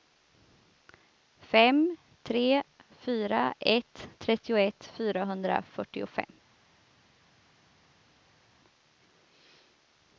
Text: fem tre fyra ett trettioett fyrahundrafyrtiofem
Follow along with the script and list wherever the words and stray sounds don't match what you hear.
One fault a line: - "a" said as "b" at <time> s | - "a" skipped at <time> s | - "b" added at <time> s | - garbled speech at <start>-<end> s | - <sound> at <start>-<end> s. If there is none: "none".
none